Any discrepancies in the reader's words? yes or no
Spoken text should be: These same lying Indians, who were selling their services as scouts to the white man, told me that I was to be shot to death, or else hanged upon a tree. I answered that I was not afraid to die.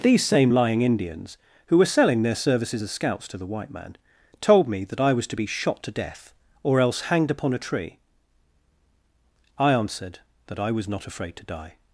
no